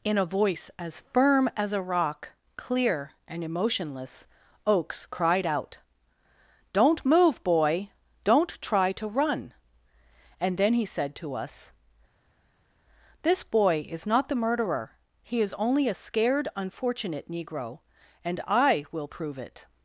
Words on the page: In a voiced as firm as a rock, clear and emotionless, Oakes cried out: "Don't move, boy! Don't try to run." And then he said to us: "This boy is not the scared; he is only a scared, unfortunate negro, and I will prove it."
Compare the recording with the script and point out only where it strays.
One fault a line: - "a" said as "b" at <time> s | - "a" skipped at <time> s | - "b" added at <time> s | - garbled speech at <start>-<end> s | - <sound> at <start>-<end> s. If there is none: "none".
- "voiced" said as "voice" at 0.2 s
- "scared" said as "murderer" at 14.4 s